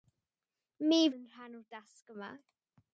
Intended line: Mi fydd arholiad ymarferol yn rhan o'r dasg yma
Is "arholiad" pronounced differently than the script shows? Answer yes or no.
yes